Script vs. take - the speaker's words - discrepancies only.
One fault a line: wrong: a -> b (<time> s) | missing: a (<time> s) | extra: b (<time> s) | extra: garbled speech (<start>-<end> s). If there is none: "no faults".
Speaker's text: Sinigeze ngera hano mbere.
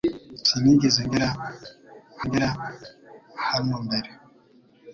extra: ngera (2.3 s)